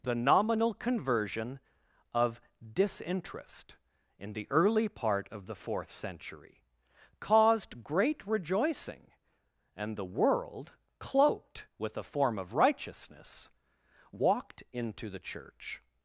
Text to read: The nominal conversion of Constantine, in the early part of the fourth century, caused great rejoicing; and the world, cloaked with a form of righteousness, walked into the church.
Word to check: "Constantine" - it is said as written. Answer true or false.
false